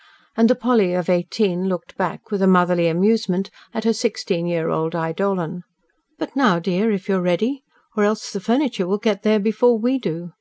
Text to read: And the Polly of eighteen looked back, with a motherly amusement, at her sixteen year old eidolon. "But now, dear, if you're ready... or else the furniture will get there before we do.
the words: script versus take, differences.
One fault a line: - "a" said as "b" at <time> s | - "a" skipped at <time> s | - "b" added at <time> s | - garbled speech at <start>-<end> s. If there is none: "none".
none